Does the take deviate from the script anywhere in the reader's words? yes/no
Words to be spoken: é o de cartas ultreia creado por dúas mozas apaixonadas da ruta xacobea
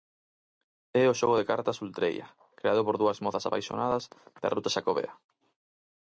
yes